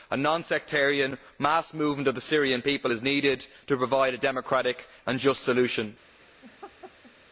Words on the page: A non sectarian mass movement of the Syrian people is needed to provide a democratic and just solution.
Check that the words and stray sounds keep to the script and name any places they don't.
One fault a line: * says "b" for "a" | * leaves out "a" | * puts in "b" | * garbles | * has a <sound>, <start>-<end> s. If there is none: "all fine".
* has a laugh, 6.4-7.1 s